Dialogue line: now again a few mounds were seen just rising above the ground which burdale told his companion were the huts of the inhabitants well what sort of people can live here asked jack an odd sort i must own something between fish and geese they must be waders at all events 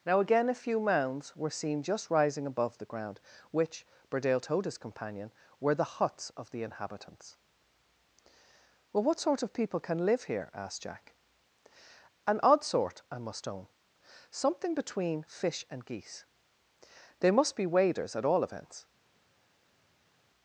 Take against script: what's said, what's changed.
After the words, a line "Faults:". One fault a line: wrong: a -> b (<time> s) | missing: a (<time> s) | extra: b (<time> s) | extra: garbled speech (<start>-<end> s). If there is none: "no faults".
now again a few mounds were seen just rising above the ground which burdale told his companion were the huts of the inhabitants well what sort of people can live here asked jack an odd sort i must own something between fish and geese they must be waders at all events
Faults:
no faults